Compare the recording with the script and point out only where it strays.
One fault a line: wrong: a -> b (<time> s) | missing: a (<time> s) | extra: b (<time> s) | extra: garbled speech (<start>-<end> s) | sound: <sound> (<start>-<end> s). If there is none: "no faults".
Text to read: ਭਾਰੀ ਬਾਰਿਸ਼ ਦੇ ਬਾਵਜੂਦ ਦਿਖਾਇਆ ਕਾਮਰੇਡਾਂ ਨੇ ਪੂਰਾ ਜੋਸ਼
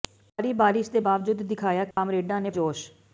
sound: dropout (1.9-2.0 s)
missing: ਪੂਰਾ (2.5 s)